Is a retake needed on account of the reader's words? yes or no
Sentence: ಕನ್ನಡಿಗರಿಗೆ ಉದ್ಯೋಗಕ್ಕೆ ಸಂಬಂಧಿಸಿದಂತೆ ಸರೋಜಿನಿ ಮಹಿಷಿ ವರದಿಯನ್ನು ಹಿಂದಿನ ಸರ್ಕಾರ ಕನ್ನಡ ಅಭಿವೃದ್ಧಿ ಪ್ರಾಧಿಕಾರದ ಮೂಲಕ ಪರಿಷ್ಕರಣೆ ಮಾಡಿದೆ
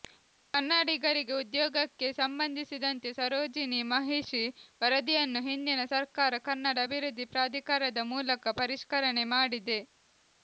no